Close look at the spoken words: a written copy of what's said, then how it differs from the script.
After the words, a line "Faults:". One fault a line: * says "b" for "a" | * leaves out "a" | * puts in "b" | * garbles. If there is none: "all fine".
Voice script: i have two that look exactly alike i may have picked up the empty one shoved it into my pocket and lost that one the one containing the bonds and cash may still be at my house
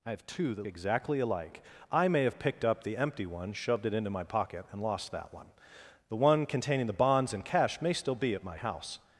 i have two that exactly alike i may have picked up the empty one shoved it into my pocket and lost that one the one containing the bonds and cash may still be at my house
Faults:
* leaves out "look"